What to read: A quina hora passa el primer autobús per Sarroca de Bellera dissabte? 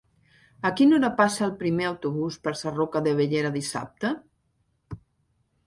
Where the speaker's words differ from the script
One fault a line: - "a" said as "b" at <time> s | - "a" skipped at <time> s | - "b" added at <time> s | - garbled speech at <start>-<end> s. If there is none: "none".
none